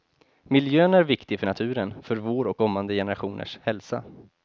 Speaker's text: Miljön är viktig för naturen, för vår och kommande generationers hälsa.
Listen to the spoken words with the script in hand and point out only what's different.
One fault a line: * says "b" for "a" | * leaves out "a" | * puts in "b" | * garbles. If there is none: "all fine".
all fine